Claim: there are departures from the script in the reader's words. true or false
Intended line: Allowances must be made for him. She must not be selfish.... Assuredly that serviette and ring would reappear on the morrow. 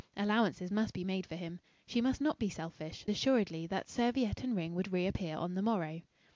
false